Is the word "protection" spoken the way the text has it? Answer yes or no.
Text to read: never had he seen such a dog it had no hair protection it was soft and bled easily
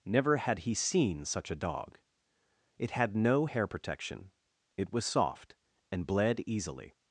yes